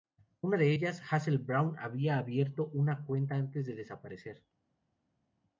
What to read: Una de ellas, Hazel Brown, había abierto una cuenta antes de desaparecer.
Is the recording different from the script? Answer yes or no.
no